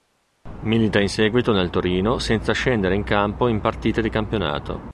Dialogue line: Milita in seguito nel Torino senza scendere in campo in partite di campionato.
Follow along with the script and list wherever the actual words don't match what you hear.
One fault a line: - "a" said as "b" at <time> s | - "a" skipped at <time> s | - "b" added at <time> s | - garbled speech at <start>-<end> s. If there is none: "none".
none